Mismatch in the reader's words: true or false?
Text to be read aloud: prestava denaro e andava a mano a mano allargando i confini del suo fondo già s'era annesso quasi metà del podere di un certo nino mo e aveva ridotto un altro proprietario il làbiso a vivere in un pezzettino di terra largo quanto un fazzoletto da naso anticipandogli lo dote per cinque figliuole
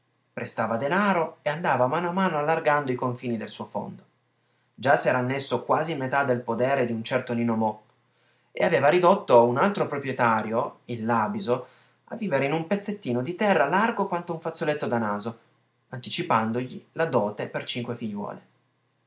true